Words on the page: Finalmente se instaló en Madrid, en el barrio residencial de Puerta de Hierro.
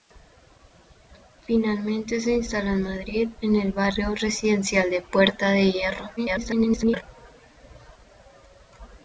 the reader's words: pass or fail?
fail